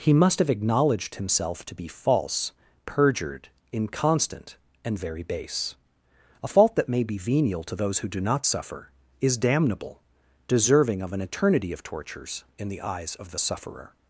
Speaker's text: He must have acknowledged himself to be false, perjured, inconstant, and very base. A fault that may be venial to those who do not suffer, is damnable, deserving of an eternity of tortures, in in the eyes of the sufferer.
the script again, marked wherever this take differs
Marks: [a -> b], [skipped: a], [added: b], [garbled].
He must have acknowledged himself to be false, perjured, inconstant, and very base. A fault that may be venial to those who do not suffer, is damnable, deserving of an eternity of tortures, in [skipped: in] the eyes of the sufferer.